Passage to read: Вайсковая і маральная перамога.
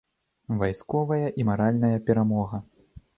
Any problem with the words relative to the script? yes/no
no